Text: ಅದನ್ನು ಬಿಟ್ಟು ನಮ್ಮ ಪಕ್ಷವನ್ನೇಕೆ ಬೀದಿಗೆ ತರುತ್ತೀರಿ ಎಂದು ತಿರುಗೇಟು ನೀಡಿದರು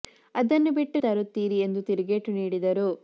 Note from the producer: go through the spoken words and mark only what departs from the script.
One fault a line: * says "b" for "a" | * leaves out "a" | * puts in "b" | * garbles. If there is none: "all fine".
* leaves out "ನಮ್ಮ ಪಕ್ಷವನ್ನೇಕೆ ಬೀದಿಗೆ"